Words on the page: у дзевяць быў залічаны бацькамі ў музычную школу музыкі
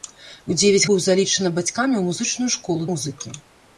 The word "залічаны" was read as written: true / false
true